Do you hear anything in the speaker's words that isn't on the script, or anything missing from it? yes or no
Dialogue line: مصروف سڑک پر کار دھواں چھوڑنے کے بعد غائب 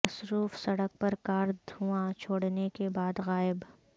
no